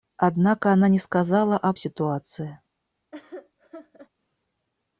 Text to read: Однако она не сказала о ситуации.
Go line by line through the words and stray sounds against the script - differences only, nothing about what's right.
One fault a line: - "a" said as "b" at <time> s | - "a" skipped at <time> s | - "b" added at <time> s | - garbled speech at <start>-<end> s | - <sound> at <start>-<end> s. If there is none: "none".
- laugh at 3.1-4.1 s